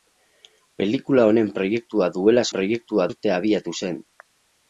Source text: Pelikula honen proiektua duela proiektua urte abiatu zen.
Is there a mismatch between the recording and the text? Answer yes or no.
no